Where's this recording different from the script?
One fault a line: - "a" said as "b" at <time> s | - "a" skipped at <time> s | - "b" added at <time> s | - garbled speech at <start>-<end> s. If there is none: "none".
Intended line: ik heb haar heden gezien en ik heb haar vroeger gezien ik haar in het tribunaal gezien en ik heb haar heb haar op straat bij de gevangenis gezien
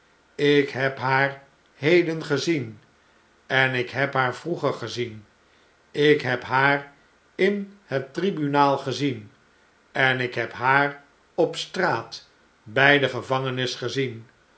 - "heb" added at 6.2 s
- "heb haar" skipped at 11.0 s